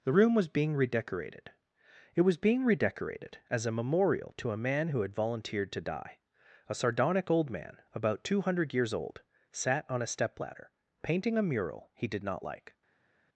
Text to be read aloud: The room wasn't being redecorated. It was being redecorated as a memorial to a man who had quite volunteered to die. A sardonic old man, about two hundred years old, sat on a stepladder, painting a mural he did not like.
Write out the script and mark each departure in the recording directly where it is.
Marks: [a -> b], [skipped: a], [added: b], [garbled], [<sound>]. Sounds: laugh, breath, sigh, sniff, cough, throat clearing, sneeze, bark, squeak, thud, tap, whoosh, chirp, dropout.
The room [wasn't -> was] being redecorated. It was being redecorated as a memorial to a man who had [skipped: quite] volunteered to die. A sardonic old man, about two hundred years old, sat on a stepladder, painting a mural he did not like.